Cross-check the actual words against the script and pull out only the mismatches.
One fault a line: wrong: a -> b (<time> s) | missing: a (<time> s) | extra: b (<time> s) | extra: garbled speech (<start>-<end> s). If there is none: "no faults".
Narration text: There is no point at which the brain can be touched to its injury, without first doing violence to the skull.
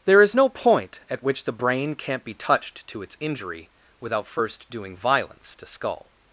wrong: can -> can't (1.9 s)
missing: the (5.7 s)